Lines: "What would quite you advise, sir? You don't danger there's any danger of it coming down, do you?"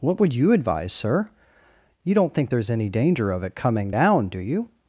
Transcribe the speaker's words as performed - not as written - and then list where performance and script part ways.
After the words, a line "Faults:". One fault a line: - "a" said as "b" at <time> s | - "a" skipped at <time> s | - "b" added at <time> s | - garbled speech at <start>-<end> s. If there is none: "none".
"What would you advise, sir? You don't think there's any danger of it coming down, do you?"
Faults:
- "quite" skipped at 0.3 s
- "danger" said as "think" at 2.3 s